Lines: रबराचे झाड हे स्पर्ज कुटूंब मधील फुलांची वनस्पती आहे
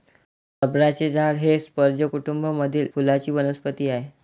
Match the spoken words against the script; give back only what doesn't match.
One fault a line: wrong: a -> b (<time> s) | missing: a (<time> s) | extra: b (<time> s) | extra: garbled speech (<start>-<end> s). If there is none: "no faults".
no faults